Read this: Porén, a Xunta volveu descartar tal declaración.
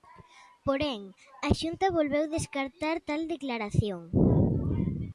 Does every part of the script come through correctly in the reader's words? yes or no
yes